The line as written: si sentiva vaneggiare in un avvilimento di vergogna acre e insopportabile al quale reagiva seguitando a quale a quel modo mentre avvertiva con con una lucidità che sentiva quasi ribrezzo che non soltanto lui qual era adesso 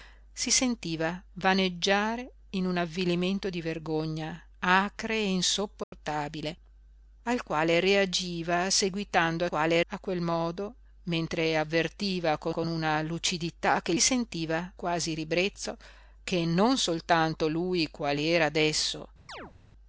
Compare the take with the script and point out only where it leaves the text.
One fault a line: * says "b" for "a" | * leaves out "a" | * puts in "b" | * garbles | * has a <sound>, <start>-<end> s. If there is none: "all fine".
* has a dropout, 5.8-5.9 s
* has a chirp, 19.3-19.5 s